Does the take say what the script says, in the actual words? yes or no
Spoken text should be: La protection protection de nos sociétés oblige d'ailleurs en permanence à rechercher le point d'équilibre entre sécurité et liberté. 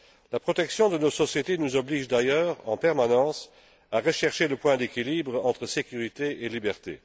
no